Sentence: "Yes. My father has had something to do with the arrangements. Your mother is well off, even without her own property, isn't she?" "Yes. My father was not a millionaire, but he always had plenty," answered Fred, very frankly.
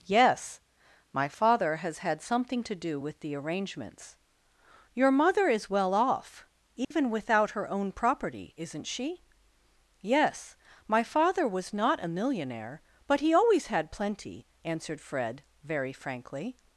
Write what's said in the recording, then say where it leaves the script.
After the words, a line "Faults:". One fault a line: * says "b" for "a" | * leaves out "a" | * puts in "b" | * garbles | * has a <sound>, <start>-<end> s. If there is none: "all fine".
"Yes. My father has had something to do with the arrangements. Your mother is well off, even without her own property, isn't she?" "Yes. My father was not a millionaire, but he always had plenty," answered Fred, very frankly.
Faults:
* has a dropout, 6.8-6.9 s